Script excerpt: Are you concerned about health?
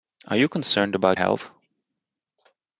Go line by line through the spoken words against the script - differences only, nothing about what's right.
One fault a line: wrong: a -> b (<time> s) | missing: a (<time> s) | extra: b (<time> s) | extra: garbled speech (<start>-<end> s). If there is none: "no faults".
no faults